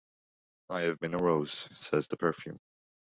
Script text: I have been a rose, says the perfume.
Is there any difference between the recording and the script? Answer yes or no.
no